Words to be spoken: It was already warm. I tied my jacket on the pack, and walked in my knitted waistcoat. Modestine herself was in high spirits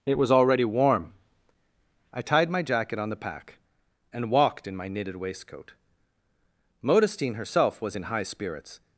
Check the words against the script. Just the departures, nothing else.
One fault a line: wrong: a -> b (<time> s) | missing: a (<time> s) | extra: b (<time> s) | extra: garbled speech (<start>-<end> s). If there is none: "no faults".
no faults